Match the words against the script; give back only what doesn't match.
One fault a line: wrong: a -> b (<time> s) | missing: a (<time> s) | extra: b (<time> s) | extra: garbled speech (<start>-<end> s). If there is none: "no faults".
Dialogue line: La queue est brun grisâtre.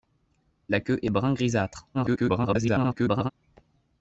extra: garbled speech (1.9-3.3 s)